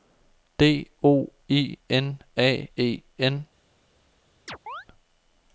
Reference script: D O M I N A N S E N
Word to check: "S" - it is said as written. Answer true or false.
false